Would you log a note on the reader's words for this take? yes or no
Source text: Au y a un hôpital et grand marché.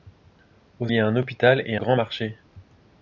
no